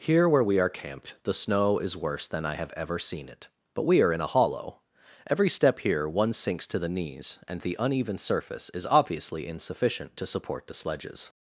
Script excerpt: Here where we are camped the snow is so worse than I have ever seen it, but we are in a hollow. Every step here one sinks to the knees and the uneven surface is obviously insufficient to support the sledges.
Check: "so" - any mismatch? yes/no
yes